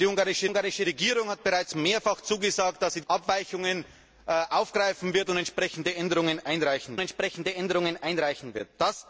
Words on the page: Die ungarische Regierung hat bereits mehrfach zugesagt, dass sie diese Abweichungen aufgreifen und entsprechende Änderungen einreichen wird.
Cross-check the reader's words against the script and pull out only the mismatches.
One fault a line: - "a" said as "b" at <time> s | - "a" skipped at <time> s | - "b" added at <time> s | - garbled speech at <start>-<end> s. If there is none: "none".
- "ungarische" added at 0.4 s
- "diese" skipped at 3.0 s
- "entsprechende Änderungen einreichen" added at 7.0 s